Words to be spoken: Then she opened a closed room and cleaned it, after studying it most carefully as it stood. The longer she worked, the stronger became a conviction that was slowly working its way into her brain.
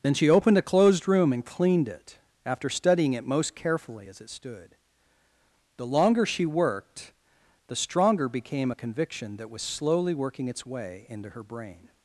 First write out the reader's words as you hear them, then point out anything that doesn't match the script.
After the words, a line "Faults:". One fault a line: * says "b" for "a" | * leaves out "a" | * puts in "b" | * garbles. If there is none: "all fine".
Then she opened a closed room and cleaned it, after studying it most carefully as it stood. The longer she worked, the stronger became a conviction that was slowly working its way into her brain.
Faults:
all fine